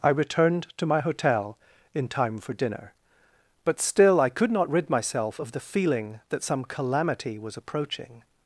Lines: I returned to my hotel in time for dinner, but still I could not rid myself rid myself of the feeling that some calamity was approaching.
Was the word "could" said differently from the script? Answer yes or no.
no